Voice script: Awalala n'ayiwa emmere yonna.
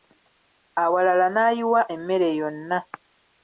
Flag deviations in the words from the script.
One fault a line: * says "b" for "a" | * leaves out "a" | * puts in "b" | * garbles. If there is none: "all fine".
all fine